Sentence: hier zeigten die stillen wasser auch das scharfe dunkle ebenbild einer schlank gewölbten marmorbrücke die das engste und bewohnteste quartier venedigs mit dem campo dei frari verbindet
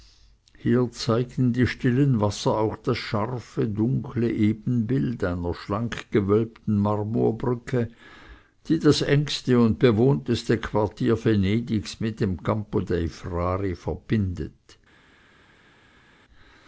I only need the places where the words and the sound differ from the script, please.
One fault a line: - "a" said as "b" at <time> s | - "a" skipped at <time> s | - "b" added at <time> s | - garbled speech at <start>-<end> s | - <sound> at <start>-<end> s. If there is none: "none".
none